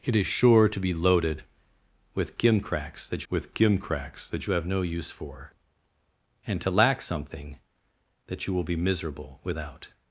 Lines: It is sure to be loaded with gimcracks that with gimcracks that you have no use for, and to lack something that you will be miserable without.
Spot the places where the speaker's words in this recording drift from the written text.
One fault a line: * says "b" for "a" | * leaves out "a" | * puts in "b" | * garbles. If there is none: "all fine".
all fine